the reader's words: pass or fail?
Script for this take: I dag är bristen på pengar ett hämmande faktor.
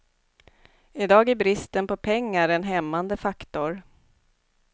fail